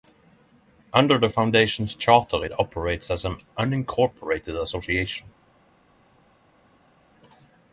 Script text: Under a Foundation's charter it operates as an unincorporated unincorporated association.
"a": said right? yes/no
no